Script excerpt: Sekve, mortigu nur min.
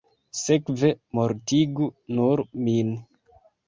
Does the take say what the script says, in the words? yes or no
yes